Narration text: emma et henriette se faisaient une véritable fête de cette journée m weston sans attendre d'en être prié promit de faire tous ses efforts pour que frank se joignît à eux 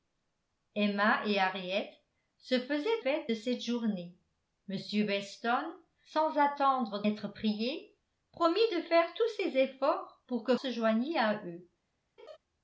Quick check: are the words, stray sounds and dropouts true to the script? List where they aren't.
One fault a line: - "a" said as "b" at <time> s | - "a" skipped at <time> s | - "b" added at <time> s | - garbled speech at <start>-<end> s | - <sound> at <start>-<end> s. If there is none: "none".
- "une véritable" skipped at 3.0 s
- "d'en" skipped at 7.0 s
- "frank" skipped at 10.6 s
- laugh at 12.2-12.4 s